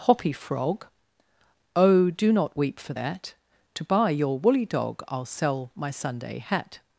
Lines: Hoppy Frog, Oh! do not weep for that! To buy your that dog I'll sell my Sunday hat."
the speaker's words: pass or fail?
fail